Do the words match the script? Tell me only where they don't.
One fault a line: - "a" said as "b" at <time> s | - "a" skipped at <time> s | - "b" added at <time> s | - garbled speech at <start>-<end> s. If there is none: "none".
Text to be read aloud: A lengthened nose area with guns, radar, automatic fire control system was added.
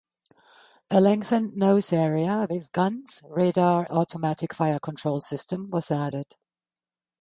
none